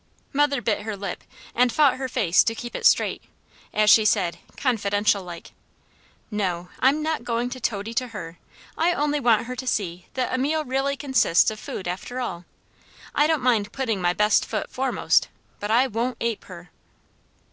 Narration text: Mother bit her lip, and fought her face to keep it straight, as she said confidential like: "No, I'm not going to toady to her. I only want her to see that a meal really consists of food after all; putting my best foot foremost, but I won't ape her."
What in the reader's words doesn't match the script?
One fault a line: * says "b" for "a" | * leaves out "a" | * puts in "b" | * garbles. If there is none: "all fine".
* puts in "I don't mind"